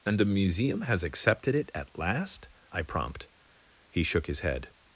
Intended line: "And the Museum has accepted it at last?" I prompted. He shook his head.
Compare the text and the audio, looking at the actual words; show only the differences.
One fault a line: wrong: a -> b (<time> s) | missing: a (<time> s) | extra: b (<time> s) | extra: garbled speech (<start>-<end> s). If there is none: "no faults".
wrong: prompted -> prompt (2.8 s)